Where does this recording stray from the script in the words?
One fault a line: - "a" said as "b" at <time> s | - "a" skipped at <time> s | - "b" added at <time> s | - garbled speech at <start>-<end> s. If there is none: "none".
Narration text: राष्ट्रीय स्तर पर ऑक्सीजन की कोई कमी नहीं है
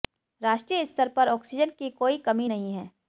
none